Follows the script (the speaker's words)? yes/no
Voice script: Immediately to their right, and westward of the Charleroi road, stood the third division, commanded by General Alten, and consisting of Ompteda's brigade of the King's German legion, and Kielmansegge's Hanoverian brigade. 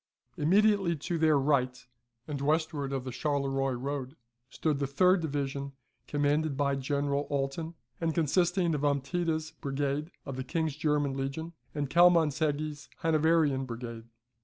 yes